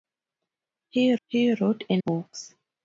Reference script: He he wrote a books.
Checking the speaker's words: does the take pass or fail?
pass